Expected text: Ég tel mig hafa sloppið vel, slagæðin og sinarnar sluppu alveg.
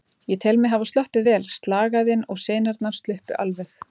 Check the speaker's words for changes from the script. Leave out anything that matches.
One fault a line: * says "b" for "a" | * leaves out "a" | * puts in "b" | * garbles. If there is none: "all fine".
all fine